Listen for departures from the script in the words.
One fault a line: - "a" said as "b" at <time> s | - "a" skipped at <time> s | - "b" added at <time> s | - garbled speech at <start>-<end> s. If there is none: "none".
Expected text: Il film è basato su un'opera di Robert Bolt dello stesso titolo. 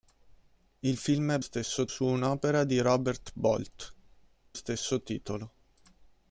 - "basato" said as "stesso" at 1.4 s
- "dello" skipped at 3.9 s